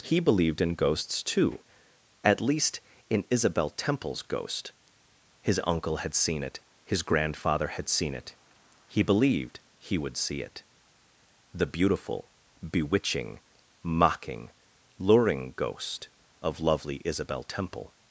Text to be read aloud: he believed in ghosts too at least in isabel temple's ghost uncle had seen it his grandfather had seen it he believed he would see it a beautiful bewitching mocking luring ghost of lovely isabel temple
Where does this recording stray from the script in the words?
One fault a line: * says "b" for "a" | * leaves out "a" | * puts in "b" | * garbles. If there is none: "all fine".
* puts in "his"
* says "the" for "a"